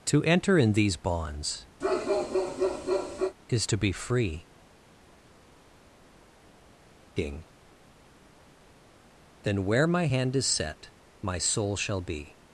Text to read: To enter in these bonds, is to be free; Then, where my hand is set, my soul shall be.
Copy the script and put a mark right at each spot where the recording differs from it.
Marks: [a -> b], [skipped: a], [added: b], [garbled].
To enter in these bonds, is to be free; [added: king] Then, where my hand is set, my soul shall be.